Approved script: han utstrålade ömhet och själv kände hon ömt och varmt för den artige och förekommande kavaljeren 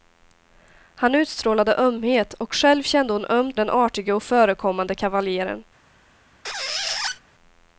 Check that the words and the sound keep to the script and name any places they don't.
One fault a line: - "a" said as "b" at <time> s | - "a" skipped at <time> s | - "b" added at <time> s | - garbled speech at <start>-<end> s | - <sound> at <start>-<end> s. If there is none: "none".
- "och varmt för" skipped at 3.6 s
- squeak at 6.4-7.2 s